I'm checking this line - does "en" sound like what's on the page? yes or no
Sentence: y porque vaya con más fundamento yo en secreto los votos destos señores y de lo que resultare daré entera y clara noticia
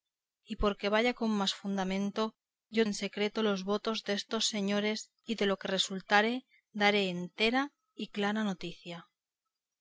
yes